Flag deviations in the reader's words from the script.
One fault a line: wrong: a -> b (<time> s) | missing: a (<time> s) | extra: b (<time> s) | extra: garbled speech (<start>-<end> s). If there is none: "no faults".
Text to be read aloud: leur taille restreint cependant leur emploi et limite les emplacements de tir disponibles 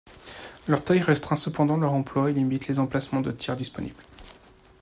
no faults